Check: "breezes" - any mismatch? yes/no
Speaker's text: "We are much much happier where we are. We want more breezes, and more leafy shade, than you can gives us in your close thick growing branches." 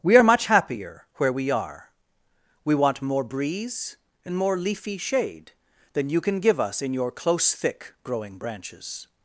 yes